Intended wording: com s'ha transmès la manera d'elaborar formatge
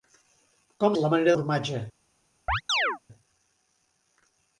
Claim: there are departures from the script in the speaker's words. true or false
true